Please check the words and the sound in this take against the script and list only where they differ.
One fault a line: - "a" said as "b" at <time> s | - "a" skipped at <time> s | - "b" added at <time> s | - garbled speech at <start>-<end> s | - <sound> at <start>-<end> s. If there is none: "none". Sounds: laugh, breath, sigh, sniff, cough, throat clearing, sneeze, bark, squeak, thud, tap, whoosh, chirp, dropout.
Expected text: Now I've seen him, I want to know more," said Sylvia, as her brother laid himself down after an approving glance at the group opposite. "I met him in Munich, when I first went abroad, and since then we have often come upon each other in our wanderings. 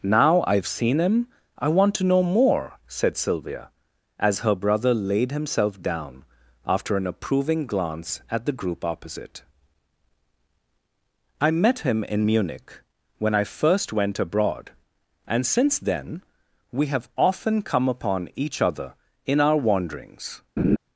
- laugh at 20.6-20.8 s